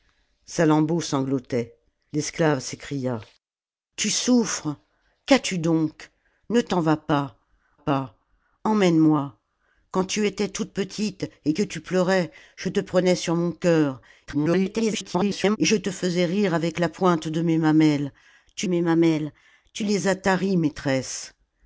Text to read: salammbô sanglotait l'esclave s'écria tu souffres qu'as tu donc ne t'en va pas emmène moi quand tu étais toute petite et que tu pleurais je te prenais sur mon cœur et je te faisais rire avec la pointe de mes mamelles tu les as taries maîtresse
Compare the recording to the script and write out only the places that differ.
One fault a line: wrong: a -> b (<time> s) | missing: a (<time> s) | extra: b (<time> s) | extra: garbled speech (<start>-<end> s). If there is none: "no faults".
extra: pas (7.7 s)
extra: garbled speech (14.3-15.6 s)
extra: mes mamelles tu (18.7 s)